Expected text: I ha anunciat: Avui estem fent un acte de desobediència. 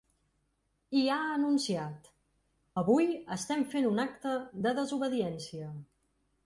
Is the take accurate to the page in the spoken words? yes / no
yes